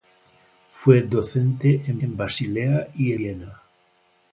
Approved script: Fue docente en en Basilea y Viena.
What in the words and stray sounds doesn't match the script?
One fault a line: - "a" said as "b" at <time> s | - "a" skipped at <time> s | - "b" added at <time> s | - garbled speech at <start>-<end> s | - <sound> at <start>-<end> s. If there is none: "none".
none